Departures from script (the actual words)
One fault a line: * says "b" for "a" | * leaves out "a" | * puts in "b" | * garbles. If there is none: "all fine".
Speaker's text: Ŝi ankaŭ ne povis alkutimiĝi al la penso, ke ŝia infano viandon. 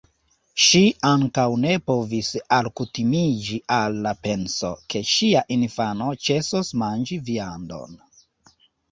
* puts in "ĉesos manĝi"